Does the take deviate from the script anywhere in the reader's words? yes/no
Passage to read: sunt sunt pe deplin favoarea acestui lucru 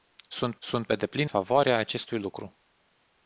no